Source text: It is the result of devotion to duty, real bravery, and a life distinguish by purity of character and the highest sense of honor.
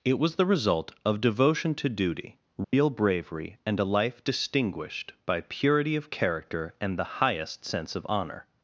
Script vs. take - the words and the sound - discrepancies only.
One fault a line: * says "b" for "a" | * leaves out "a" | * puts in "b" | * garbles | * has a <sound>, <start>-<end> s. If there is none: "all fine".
* says "was" for "is"
* has a dropout, 2.6-2.7 s
* says "distinguished" for "distinguish"